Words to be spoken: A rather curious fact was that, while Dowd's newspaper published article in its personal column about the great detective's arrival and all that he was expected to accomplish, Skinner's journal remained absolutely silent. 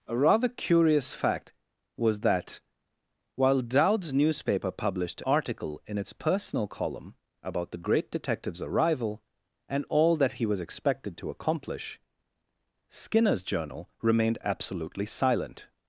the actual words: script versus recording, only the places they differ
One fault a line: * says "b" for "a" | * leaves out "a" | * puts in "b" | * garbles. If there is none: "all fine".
all fine